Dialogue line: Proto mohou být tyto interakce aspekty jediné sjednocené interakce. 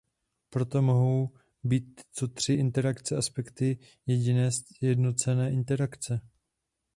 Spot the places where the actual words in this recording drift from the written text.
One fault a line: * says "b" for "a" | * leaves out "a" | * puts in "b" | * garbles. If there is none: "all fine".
* puts in "tři"